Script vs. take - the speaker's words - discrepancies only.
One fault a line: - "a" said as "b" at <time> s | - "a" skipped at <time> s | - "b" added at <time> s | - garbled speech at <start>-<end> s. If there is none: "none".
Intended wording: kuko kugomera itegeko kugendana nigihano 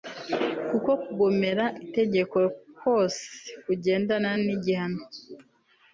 - "kose" added at 2.8 s